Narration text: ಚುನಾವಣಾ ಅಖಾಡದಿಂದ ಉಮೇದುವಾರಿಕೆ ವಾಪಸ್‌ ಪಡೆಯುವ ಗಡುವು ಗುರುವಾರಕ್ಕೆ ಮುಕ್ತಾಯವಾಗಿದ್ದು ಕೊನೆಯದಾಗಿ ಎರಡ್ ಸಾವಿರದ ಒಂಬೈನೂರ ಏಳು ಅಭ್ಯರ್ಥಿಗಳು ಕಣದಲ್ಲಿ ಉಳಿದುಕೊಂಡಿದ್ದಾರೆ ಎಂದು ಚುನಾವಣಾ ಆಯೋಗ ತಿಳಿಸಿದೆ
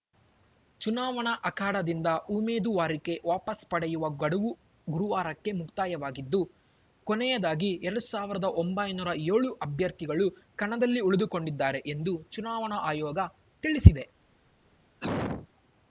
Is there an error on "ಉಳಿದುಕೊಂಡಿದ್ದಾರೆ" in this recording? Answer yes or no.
no